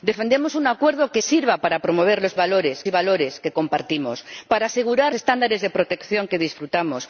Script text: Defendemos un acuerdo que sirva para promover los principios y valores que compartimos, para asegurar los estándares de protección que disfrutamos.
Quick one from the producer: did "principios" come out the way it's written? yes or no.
no